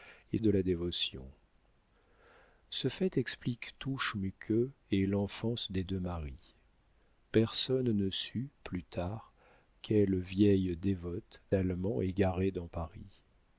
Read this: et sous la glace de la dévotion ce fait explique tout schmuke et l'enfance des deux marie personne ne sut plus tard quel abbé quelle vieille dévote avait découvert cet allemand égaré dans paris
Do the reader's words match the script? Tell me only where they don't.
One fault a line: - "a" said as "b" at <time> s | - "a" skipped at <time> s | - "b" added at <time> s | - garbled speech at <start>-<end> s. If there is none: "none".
- "sous la glace" skipped at 0.4 s
- "quel abbé" skipped at 9.3 s
- "avait découvert cet" skipped at 11.4 s